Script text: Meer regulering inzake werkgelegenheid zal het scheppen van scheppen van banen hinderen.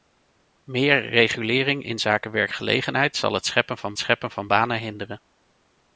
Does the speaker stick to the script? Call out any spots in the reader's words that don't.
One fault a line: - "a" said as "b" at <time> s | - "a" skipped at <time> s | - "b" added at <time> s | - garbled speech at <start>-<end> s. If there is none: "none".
none